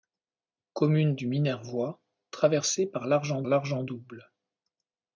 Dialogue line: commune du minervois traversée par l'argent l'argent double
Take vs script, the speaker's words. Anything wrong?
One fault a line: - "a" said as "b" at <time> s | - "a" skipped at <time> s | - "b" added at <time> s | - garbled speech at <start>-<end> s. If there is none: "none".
none